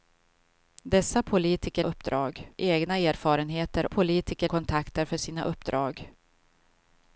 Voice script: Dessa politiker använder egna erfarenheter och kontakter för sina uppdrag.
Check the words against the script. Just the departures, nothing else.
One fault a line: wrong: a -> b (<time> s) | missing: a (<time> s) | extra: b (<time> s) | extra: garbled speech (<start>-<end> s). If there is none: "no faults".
wrong: använder -> uppdrag (1.8 s)
wrong: och -> politiker (3.9 s)